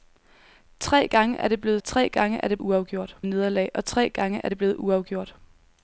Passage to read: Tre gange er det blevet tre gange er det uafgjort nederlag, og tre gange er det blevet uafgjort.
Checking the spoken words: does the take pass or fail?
pass